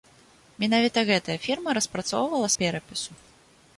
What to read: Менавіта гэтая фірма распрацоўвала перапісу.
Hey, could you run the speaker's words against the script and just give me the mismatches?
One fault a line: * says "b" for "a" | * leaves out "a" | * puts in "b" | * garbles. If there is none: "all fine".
all fine